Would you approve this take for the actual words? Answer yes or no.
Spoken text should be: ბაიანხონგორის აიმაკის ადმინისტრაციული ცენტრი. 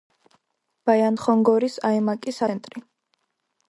no